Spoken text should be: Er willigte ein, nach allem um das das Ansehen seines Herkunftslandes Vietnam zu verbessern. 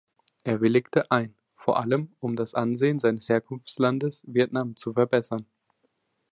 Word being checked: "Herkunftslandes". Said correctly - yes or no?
yes